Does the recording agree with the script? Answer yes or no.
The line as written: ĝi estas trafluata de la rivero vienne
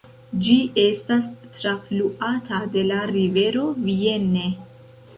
yes